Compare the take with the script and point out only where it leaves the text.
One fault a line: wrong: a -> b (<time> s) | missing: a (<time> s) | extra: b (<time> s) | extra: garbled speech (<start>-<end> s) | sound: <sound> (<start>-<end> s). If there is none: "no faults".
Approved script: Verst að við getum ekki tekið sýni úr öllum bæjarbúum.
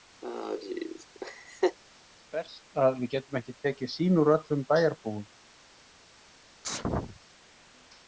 sound: laugh (0.2-1.8 s)
sound: sneeze (6.6-7.2 s)